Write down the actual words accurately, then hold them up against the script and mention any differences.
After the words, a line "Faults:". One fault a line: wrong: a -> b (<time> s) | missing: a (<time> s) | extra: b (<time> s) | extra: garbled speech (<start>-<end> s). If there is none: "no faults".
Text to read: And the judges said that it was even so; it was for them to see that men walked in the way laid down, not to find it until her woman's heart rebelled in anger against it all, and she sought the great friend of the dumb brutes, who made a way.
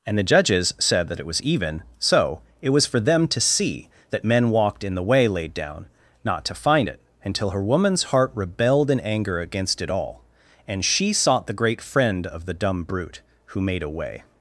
And the judges said that it was even so; it was for them to see that men walked in the way laid down, not to find it until her woman's heart rebelled in anger against it all, and she sought the great friend of the dumb brute, who made a way.
Faults:
wrong: brutes -> brute (12.8 s)